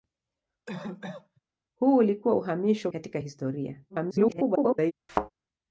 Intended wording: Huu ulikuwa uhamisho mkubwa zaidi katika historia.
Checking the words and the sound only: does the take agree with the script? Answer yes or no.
no